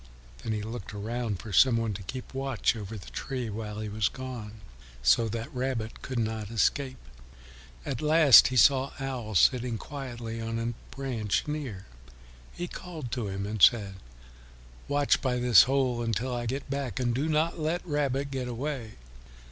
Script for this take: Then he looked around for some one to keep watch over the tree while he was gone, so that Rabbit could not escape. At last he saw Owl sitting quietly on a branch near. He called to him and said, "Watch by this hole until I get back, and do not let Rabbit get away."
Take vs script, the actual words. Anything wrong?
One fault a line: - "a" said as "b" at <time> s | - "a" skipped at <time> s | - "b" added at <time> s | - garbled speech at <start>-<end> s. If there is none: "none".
none